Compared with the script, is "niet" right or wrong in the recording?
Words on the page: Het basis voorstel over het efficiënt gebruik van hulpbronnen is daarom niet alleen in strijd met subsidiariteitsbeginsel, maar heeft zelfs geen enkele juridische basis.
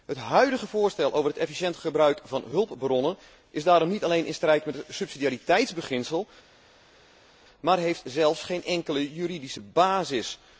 right